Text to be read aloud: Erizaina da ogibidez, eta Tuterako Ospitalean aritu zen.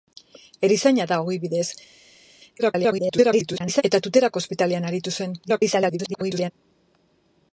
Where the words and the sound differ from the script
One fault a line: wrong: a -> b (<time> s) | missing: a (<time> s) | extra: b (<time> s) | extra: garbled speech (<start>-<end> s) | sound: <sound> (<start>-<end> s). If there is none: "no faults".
extra: garbled speech (2.6-3.8 s)
extra: garbled speech (5.4-6.5 s)